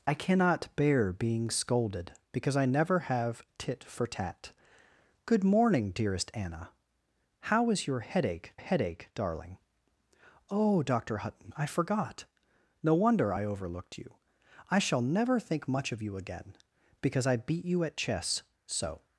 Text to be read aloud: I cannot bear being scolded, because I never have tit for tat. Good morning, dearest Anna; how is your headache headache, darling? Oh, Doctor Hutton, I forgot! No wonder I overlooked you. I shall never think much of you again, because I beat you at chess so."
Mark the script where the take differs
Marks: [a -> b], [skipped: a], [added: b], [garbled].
I cannot bear being scolded, because I never have tit for tat. Good morning, dearest Anna; how is your headache headache, darling? Oh, Doctor Hutton, I forgot! No wonder I overlooked you. I shall never think much of you again, because I beat you at chess so."